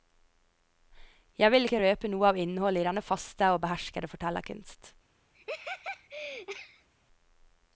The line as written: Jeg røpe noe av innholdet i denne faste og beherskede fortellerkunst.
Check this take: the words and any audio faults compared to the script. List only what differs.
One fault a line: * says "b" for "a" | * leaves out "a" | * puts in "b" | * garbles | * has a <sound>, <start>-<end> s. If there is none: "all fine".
* puts in "vil ikke"
* has a laugh, 5.3-6.9 s